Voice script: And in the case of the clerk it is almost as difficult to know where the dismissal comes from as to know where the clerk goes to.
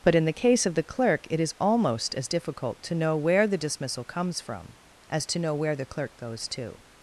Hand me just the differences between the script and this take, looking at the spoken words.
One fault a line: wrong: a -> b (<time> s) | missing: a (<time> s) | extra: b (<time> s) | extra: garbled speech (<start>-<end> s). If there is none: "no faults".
wrong: And -> But (0.0 s)